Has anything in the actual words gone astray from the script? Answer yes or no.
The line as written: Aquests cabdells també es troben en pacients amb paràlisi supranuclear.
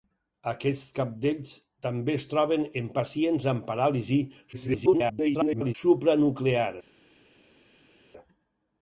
yes